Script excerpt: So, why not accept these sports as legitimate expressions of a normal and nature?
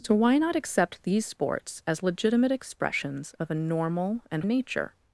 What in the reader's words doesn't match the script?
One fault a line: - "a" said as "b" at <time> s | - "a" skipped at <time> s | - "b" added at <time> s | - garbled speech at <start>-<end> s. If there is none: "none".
none